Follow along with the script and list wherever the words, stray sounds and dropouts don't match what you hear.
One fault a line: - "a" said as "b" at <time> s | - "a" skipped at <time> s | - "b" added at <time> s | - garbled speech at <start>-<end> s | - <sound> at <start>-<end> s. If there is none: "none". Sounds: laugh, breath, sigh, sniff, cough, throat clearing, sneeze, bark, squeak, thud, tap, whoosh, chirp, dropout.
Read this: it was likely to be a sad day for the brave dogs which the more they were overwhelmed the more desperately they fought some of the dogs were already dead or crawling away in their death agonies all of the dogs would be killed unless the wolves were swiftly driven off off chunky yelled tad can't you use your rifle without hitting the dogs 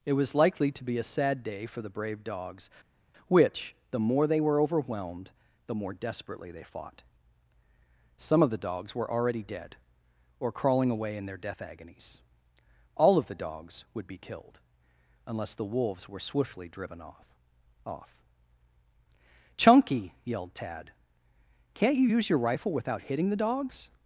none